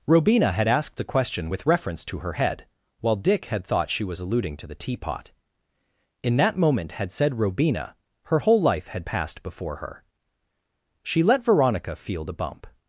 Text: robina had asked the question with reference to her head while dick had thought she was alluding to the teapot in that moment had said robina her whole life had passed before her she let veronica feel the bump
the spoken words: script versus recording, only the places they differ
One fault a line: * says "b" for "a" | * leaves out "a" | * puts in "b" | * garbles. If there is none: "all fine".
all fine